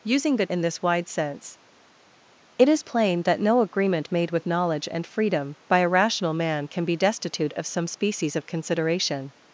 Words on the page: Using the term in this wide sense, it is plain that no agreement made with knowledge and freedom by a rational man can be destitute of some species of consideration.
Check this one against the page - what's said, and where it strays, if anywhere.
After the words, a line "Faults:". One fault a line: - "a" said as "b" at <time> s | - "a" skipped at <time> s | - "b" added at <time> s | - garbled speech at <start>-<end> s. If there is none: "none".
Using the in this wide sense, it is plain that no agreement made with knowledge and freedom by a rational man can be destitute of some species of consideration.
Faults:
- "term" skipped at 0.5 s